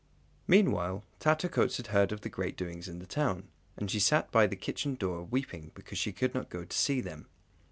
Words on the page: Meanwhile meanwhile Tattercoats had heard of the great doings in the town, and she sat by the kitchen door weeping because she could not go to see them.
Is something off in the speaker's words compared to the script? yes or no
yes